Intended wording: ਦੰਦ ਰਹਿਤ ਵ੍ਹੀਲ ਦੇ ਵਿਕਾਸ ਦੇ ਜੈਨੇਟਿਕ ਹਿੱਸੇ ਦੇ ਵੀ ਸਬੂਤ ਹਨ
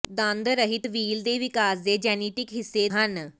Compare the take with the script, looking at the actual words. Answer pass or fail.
fail